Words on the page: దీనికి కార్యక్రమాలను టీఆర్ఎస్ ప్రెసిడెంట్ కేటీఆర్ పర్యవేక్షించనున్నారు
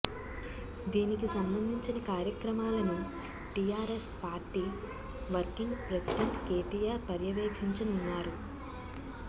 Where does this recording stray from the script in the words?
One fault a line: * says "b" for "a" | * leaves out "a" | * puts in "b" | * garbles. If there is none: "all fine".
* puts in "సంబంధించిన"
* puts in "పార్టీ వర్కింగ్"